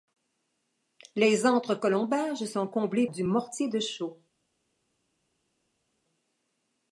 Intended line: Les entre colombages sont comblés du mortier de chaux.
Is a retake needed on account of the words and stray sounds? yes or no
no